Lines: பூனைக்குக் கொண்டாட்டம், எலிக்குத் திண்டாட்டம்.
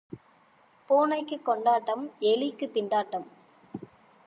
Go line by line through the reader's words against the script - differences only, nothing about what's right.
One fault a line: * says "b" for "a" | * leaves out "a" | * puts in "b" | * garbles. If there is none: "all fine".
all fine